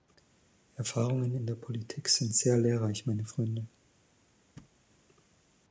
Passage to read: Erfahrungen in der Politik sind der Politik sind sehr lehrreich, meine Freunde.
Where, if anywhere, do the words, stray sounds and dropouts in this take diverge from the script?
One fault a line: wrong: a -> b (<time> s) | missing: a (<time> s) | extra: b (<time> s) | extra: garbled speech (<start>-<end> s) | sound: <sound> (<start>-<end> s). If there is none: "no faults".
missing: der Politik sind (2.3 s)
sound: thud (4.6-4.8 s)